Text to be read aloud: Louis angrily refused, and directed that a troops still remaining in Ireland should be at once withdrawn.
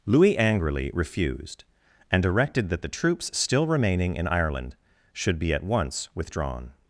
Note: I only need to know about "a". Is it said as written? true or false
false